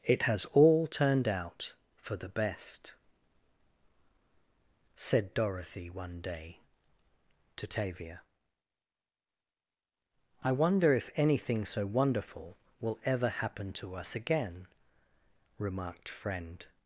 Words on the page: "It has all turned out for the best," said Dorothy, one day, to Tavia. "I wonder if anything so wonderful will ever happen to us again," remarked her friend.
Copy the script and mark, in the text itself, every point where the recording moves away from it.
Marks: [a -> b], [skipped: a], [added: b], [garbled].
"It has all turned out for the best," said Dorothy, one day, to Tavia. "I wonder if anything so wonderful will ever happen to us again," remarked [skipped: her] friend.